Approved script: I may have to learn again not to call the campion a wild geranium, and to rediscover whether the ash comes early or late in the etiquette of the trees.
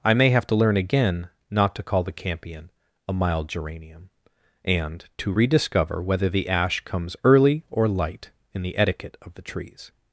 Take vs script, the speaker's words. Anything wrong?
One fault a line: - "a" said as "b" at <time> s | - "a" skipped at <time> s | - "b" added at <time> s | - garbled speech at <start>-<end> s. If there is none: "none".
- "wild" said as "mild" at 3.1 s
- "late" said as "light" at 7.9 s